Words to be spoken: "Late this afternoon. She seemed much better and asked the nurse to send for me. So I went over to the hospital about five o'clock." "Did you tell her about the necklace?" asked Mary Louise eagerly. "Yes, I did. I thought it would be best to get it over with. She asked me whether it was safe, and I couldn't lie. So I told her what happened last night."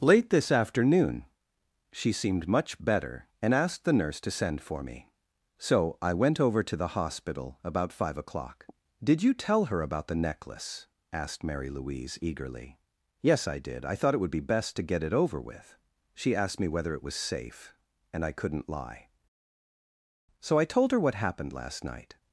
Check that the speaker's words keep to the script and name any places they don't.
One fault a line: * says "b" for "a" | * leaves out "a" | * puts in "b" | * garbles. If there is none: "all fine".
all fine